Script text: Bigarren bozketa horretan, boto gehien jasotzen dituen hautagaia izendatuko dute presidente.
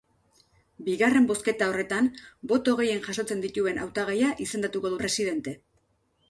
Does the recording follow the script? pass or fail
fail